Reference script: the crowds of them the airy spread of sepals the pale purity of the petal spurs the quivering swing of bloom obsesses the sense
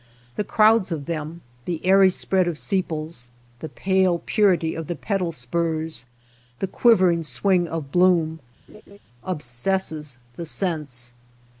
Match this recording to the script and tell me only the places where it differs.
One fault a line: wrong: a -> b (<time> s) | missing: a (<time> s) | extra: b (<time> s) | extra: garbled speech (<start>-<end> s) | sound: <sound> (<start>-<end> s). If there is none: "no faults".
sound: laugh (8.7-9.0 s)